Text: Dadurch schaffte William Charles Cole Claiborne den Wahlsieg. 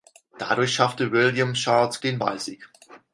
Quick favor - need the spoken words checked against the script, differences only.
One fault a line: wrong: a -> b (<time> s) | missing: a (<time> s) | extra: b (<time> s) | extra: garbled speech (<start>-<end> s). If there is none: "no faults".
missing: Cole Claiborne (2.0 s)